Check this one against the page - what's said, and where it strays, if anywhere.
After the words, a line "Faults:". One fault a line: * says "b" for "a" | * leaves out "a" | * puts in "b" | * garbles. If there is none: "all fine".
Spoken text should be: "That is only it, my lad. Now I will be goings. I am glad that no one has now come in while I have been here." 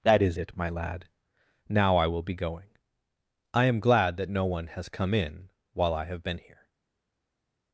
"That is it, my lad. Now I will be going. I am glad that no one has come in while I have been here."
Faults:
* leaves out "only"
* says "going" for "goings"
* leaves out "now"